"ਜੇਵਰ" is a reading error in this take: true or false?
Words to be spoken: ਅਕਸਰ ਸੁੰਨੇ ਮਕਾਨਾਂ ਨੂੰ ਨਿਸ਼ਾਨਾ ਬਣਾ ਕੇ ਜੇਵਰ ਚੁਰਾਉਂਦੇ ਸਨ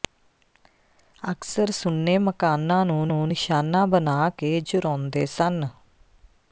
true